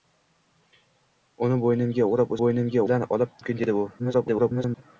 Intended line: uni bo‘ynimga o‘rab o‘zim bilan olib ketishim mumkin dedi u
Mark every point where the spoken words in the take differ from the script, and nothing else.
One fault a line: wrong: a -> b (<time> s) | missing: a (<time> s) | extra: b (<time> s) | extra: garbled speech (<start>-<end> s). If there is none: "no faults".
wrong: o‘zim -> bo‘ynimga (2.4 s)
missing: ketishim (3.4 s)
extra: garbled speech (4.0-4.8 s)